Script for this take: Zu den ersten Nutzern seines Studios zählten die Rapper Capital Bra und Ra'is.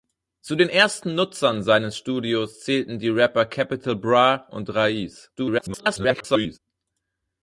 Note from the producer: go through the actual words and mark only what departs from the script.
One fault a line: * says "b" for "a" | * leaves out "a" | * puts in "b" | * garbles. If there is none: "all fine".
* garbles